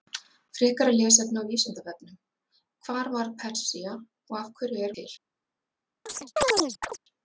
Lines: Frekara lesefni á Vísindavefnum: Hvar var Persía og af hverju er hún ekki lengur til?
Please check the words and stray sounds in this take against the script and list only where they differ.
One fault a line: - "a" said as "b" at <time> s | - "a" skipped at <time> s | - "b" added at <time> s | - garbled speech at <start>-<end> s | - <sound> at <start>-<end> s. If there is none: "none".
- "hún ekki lengur" skipped at 5.0 s
- chirp at 6.1-7.0 s